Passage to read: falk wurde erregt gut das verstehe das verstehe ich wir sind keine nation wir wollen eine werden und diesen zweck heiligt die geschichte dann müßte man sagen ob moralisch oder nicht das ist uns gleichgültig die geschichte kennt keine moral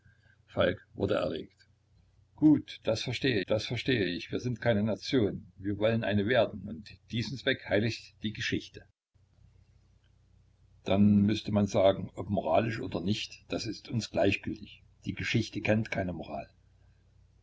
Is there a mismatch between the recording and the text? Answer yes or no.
no